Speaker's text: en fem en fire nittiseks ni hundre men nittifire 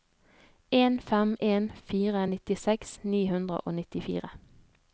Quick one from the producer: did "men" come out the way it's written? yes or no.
no